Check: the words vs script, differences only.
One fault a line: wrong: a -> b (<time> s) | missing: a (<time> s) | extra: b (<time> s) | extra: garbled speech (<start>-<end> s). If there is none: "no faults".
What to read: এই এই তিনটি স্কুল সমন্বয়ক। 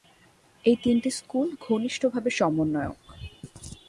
missing: এই (0.8 s)
extra: ঘনিষ্ঠভাবে (1.6 s)